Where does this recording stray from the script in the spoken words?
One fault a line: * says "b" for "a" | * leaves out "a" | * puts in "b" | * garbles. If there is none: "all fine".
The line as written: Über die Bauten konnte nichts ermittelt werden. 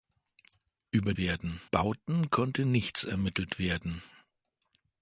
* says "werden" for "die"